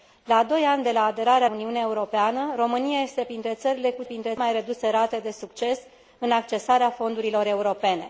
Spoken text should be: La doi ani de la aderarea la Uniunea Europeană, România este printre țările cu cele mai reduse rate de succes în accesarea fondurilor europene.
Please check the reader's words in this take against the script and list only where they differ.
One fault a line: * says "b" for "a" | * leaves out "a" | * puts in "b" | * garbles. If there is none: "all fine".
* leaves out "la"
* says "printre" for "cele"